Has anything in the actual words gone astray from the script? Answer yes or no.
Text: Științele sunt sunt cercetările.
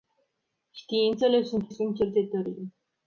no